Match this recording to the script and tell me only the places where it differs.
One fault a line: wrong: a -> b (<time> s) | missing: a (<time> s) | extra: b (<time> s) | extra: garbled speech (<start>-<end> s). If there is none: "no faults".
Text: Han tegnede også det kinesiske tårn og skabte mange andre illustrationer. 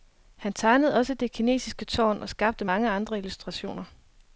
no faults